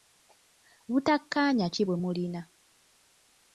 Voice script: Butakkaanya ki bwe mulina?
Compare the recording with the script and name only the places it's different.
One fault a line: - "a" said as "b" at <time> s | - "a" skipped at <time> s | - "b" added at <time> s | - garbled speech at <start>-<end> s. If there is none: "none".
none